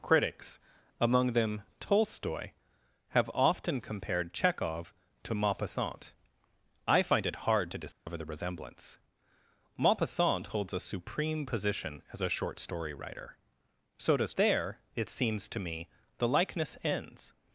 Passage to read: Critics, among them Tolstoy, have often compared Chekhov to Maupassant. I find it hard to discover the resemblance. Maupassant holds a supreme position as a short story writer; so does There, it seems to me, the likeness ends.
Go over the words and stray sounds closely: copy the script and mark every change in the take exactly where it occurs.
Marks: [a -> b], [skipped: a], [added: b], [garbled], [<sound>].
Critics, among them Tolstoy, have often compared Chekhov to Maupassant. I find it hard to discover [dropout] the resemblance. Maupassant holds a supreme position as a short story writer; so does There, it seems to me, the likeness ends.